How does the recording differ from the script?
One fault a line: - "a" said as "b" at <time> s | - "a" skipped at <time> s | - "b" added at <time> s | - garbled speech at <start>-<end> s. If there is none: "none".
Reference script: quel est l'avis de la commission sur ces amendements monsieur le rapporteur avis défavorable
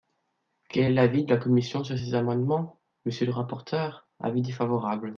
none